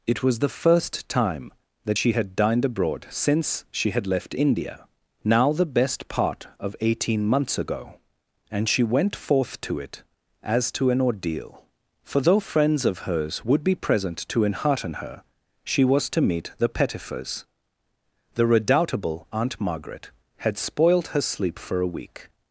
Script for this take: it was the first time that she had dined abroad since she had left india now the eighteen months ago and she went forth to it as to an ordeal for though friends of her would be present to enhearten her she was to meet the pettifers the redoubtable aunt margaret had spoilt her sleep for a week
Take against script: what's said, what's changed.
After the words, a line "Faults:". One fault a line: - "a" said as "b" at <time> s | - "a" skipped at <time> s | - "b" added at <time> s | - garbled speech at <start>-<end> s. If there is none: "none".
it was the first time that she had dined abroad since she had left india now the best part of eighteen months ago and she went forth to it as to an ordeal for though friends of hers would be present to enhearten her she was to meet the pettifers the redoubtable aunt margaret had spoilt her sleep for a week
Faults:
- "best part of" added at 5.6 s
- "her" said as "hers" at 13.1 s